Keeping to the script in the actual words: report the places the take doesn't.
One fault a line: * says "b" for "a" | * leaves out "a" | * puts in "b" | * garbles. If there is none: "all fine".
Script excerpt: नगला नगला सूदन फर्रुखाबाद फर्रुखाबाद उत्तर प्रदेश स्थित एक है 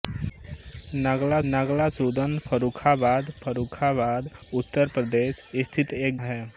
all fine